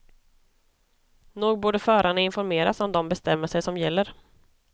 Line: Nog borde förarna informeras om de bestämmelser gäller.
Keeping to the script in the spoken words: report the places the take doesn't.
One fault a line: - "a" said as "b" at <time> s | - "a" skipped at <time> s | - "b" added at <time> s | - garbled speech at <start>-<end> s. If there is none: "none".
- "som" added at 3.6 s